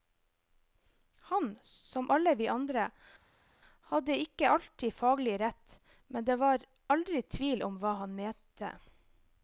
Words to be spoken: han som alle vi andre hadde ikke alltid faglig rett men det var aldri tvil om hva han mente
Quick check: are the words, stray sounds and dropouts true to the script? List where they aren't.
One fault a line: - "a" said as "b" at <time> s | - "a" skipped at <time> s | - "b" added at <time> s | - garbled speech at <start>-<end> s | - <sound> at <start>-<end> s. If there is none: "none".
none